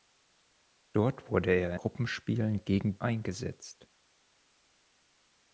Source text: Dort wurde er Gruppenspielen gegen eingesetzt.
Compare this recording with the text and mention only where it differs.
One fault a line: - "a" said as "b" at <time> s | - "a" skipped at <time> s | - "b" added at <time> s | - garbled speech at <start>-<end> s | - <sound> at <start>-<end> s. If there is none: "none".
none